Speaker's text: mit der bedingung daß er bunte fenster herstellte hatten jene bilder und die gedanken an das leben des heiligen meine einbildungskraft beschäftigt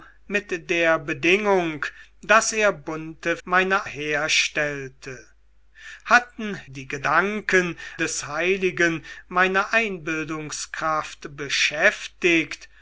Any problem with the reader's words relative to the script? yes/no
yes